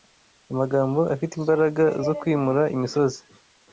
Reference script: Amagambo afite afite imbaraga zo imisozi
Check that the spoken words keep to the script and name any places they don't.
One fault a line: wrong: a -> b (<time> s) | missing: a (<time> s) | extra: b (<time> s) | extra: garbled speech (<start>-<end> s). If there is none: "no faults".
missing: afite (1.3 s)
extra: kwimura (2.2 s)